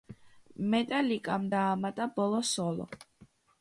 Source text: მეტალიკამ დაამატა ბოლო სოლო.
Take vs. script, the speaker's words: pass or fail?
pass